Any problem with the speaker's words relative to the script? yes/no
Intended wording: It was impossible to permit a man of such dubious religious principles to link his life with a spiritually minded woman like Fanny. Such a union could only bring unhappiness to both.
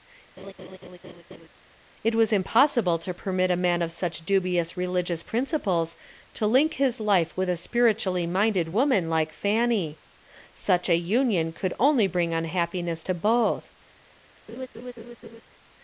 no